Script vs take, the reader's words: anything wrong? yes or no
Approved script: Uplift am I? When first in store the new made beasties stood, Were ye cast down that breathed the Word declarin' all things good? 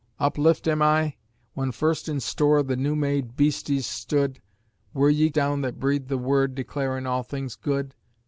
yes